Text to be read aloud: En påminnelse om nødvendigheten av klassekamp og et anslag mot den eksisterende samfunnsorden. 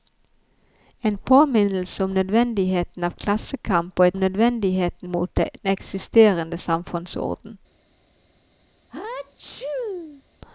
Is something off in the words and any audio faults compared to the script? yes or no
yes